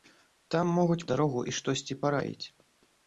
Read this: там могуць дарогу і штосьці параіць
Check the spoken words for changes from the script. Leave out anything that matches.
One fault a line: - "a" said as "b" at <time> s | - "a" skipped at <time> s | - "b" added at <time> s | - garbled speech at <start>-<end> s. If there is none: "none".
none